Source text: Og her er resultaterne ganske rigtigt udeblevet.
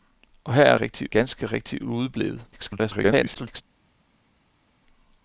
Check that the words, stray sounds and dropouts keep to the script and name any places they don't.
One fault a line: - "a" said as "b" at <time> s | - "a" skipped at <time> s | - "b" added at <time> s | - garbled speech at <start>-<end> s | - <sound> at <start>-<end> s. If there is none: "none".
- "resultaterne" said as "rigtigt" at 0.7 s
- garbled speech at 2.5-3.6 s